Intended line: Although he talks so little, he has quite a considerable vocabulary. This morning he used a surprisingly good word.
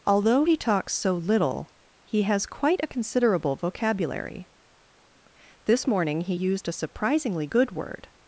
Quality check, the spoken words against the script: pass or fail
pass